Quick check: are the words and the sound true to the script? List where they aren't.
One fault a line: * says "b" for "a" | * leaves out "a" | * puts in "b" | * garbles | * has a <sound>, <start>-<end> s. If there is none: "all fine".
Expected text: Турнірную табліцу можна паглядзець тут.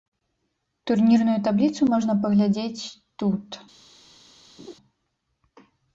* has a laugh, 4.6-4.7 s